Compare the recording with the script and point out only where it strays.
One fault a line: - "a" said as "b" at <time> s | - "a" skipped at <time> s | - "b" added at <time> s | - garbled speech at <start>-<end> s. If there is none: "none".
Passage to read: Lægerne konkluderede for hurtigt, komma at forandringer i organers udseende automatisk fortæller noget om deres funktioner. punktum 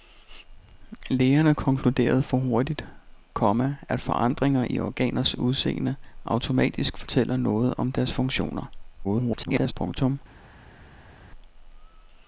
- garbled speech at 9.0-9.7 s